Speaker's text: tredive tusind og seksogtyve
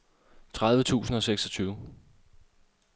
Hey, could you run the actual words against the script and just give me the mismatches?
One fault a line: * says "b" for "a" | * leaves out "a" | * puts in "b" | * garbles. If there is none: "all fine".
all fine